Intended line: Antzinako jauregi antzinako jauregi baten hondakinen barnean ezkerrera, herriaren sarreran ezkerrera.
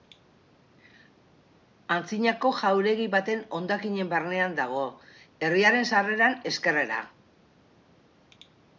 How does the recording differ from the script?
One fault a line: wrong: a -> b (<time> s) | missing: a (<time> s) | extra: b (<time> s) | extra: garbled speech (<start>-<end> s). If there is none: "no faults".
missing: antzinako jauregi (3.1 s)
wrong: ezkerrera -> dago (4.6 s)